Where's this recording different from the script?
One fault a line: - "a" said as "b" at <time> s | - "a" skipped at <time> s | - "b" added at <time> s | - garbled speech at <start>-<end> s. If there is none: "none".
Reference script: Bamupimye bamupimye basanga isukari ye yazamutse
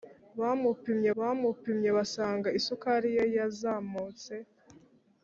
none